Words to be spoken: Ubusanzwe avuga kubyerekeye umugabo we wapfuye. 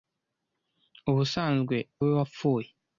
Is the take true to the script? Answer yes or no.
no